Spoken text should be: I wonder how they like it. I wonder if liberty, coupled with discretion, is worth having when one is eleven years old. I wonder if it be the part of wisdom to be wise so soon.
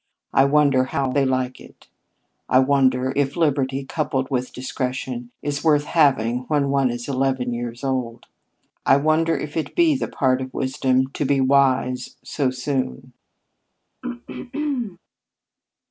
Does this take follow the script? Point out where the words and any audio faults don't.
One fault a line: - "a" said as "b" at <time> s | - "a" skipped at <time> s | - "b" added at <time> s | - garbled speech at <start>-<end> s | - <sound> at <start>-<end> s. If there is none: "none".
- throat clearing at 14.0-15.0 s